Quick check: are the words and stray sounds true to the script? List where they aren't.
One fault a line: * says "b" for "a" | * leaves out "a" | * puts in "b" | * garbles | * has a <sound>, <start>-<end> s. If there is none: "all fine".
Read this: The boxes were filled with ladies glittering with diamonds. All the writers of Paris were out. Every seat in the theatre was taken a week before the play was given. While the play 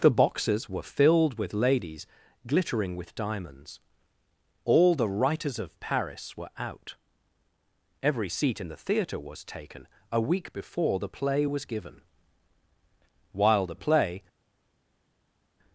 all fine